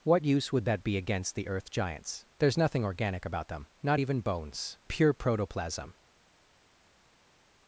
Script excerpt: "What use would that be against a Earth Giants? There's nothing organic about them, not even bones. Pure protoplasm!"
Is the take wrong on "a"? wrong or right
wrong